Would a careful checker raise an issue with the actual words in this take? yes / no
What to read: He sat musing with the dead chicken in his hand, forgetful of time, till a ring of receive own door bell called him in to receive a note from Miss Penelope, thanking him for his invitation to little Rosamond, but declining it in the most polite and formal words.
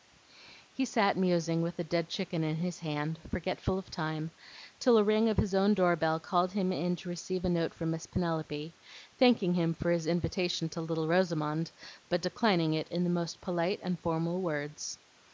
yes